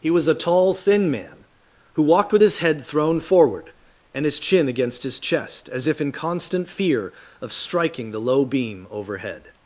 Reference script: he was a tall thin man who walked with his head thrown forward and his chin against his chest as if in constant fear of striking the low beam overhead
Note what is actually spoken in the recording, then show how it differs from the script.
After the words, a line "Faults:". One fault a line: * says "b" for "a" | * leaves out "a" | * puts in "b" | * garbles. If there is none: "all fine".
he was a tall thin man who walked with his head thrown forward and his chin against his chest as if in constant fear of striking the low beam overhead
Faults:
all fine